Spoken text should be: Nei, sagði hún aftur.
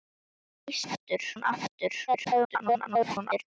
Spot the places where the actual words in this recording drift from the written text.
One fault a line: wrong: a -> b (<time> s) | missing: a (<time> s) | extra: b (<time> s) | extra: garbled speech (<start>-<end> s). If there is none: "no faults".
wrong: sagði -> aftur (0.8 s)
extra: garbled speech (2.1-3.4 s)